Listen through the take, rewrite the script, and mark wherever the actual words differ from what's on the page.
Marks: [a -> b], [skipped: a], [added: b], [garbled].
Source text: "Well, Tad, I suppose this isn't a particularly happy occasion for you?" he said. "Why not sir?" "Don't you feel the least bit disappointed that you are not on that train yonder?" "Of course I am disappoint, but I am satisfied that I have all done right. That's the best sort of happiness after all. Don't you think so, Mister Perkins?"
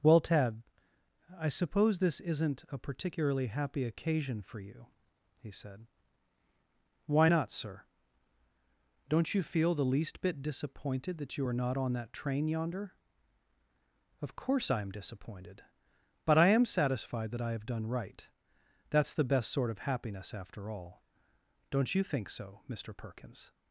"Well, Tad, I suppose this isn't a particularly happy occasion for you?" he said. "Why not sir?" "Don't you feel the least bit disappointed that you are not on that train yonder?" "Of course I am [disappoint, -> disappointed] but I am satisfied that I have [skipped: all] done right. That's the best sort of happiness after all. Don't you think so, Mister Perkins?"